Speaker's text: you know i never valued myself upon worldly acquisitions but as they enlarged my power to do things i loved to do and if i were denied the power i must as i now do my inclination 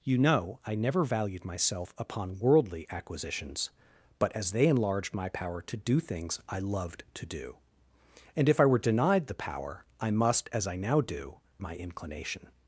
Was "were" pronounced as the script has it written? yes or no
yes